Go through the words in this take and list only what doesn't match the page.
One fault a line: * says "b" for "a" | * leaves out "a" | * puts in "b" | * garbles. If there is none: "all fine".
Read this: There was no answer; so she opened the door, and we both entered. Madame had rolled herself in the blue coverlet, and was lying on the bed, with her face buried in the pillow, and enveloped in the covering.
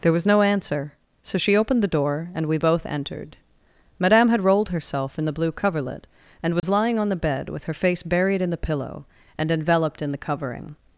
all fine